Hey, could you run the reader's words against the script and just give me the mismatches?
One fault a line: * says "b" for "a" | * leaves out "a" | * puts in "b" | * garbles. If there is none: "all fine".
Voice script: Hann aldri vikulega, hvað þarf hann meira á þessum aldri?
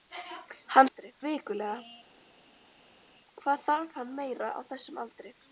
all fine